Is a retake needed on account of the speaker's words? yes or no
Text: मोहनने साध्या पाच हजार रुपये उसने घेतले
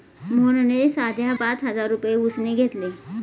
no